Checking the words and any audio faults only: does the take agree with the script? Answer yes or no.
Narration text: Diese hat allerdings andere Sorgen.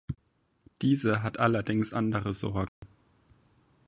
no